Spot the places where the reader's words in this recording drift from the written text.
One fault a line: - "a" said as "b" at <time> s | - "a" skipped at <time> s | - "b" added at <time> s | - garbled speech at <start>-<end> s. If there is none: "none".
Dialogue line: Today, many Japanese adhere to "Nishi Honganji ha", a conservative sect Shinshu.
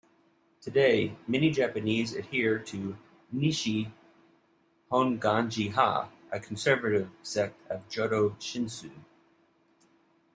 - "of Jodo" added at 7.7 s